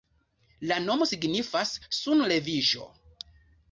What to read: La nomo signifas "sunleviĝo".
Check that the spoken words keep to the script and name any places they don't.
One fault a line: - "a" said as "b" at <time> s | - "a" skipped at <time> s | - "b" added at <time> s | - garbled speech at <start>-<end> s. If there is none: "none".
none